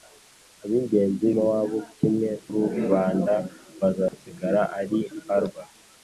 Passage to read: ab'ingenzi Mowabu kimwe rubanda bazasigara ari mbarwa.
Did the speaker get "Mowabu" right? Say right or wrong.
right